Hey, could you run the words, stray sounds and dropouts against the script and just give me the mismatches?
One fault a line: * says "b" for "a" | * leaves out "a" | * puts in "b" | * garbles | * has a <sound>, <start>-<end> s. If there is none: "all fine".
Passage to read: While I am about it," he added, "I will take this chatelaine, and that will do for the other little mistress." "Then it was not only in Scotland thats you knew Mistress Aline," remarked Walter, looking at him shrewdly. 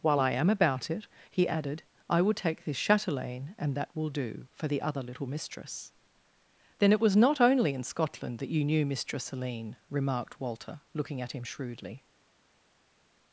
* says "that" for "thats"